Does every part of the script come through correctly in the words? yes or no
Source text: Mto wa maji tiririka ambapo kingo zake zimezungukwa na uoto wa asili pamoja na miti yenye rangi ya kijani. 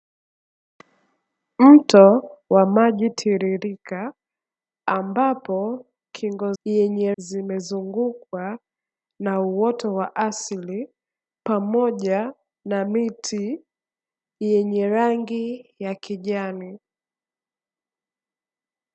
no